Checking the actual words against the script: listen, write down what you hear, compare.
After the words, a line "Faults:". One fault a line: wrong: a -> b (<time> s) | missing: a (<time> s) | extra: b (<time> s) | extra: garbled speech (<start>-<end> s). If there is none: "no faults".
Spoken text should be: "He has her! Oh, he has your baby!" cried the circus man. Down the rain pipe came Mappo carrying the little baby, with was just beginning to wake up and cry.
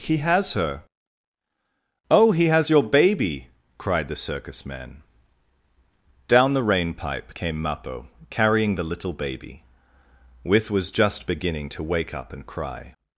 "He has her! Oh, he has your baby!" cried the circus man. Down the rain pipe came Mappo carrying the little baby, with was just beginning to wake up and cry.
Faults:
no faults